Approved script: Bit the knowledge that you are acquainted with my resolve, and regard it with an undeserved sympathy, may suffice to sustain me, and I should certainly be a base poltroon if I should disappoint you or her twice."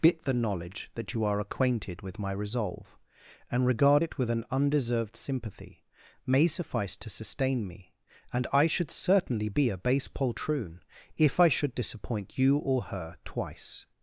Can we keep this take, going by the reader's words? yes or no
yes